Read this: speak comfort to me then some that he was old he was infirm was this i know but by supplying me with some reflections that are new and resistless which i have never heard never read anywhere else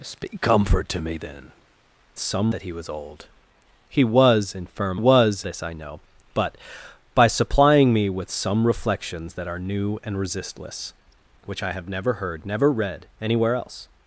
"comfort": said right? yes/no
yes